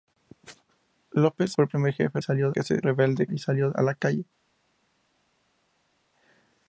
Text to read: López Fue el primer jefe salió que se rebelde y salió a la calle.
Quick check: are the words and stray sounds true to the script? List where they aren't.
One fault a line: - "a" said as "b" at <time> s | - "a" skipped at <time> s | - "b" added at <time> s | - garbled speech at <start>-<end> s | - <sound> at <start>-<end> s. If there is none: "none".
none